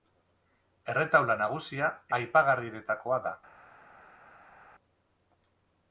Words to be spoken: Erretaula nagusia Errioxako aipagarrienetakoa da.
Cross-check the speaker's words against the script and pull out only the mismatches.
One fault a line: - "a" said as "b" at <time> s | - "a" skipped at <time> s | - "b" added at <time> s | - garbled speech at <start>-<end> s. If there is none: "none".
- "Errioxako" skipped at 1.9 s